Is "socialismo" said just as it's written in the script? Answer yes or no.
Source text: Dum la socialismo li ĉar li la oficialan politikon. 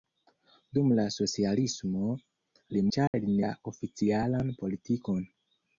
yes